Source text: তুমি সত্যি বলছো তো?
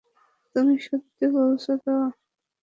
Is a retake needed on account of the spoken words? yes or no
no